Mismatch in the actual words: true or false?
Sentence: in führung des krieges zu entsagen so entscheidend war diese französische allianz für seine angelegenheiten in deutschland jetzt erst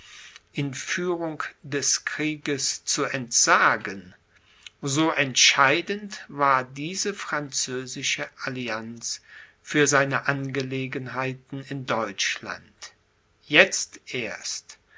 false